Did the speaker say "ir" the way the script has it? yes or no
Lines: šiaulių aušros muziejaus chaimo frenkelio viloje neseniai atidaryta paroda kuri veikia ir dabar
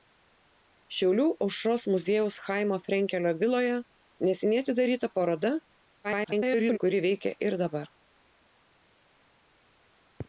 yes